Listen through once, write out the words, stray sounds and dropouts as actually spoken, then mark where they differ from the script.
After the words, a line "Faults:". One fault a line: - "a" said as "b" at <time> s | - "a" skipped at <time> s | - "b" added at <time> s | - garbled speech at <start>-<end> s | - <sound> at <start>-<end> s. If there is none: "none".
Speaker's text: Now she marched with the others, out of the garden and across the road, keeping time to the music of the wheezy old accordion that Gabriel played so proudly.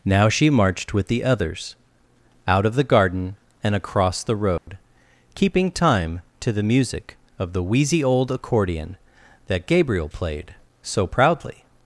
Now she marched with the others, out of the garden and across the road, keeping time to the music of the wheezy old accordion that Gabriel played so proudly.
Faults:
- dropout at 4.6-4.7 s